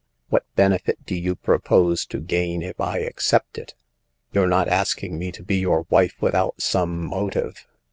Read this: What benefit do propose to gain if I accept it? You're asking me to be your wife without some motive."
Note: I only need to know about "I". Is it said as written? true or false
true